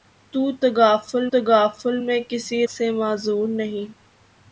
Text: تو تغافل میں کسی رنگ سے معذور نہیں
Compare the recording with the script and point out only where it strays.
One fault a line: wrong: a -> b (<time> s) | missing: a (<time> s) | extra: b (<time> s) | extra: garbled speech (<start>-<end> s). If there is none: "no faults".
extra: تغافل (1.3 s)
missing: رنگ (2.6 s)